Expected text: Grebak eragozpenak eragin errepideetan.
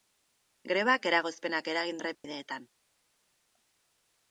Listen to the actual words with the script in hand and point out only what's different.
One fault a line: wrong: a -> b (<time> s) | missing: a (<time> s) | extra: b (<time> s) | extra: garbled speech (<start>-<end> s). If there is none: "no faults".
no faults